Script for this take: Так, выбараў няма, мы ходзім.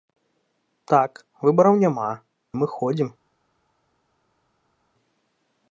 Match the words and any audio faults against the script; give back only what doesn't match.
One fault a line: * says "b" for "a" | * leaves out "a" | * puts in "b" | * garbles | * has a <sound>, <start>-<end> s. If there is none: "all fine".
all fine